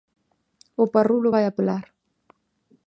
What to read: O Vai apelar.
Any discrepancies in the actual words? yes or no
yes